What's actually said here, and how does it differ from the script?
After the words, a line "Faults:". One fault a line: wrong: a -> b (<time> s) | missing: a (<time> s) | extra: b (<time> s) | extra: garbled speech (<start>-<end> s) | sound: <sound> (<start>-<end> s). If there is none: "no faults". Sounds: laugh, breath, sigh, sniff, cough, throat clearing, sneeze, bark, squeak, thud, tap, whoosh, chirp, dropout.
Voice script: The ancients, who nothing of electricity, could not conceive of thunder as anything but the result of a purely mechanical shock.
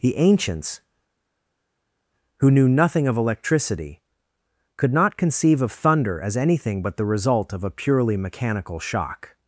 The ancients, who knew nothing of electricity, could not conceive of thunder as anything but the result of a purely mechanical shock.
Faults:
extra: knew (2.5 s)